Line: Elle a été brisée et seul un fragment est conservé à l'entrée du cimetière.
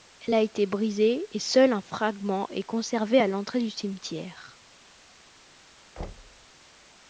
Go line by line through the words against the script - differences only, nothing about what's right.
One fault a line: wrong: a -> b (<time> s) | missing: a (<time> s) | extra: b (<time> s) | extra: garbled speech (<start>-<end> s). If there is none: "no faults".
no faults